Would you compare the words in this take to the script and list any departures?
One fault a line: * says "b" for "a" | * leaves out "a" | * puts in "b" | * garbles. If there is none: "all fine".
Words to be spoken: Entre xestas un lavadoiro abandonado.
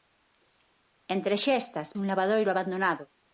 all fine